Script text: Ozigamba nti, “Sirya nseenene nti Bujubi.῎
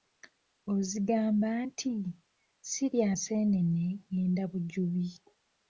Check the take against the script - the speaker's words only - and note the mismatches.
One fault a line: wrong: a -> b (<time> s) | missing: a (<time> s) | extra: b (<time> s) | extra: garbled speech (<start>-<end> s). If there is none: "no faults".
wrong: nti -> ngenda (4.1 s)